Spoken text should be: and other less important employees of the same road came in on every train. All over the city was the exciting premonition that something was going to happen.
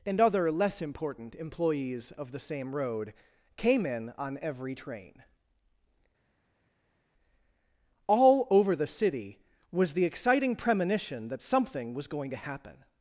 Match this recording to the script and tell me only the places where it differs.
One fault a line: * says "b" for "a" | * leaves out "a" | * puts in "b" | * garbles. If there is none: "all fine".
all fine